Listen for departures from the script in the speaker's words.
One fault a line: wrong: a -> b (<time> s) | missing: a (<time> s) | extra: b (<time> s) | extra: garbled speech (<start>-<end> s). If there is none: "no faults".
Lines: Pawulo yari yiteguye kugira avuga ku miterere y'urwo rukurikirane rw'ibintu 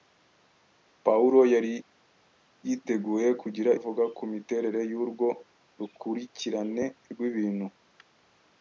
no faults